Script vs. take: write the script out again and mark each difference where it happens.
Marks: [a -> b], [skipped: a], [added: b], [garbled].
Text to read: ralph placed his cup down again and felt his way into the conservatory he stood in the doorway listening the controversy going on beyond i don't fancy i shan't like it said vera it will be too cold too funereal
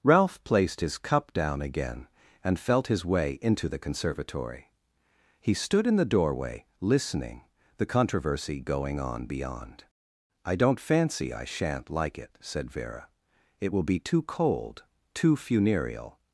ralph placed his cup down again and felt his way into the conservatory he stood in the doorway listening the controversy going on beyond i don't fancy i shan't like it said vera it will be too cold too funereal